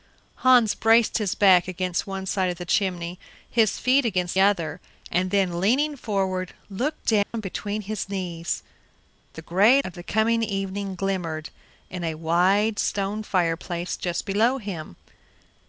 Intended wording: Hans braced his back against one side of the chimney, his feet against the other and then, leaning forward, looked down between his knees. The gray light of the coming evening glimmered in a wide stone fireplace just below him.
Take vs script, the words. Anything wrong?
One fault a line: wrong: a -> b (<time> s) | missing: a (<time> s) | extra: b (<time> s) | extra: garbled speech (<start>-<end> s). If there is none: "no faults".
missing: the (4.4 s)
missing: light (9.8 s)